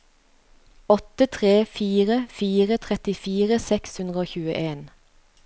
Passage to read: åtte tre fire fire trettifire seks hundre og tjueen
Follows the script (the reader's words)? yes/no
yes